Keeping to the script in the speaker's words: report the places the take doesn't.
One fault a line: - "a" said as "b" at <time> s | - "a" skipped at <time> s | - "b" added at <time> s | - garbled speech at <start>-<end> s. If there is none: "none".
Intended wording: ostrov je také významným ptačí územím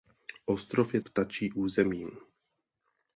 - "také významným" skipped at 1.0 s